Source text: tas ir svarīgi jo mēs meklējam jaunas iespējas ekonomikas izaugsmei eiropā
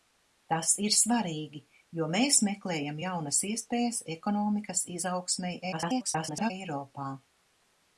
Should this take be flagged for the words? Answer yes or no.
yes